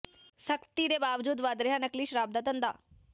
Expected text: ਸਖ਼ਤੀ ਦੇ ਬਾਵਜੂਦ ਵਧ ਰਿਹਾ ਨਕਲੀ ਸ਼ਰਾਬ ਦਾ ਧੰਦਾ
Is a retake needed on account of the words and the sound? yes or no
no